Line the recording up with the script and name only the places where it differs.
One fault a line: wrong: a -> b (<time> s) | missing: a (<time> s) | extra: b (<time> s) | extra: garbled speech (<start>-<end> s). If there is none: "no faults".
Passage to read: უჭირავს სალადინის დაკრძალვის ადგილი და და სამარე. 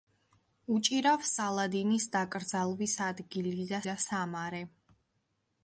no faults